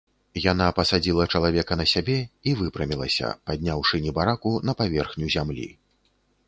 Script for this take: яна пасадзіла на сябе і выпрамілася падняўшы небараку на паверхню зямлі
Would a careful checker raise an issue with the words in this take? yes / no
yes